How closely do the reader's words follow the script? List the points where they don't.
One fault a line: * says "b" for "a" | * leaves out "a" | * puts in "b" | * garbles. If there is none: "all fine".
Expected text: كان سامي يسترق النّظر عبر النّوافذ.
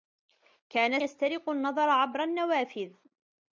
* leaves out "سامي"